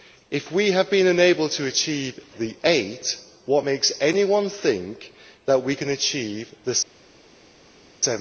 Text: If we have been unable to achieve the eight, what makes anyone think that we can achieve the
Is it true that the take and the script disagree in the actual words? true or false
false